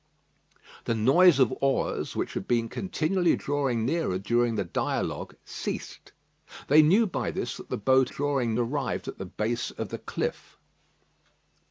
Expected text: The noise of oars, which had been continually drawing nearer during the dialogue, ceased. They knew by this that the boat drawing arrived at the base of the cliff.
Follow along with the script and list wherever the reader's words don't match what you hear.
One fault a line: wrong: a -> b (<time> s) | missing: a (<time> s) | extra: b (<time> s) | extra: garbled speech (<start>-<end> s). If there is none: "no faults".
no faults